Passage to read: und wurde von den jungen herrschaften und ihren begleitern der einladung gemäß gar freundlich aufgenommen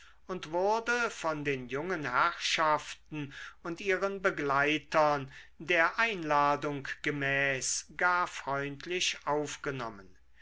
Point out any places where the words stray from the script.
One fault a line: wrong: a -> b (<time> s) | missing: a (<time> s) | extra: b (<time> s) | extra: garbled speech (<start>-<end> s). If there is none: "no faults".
no faults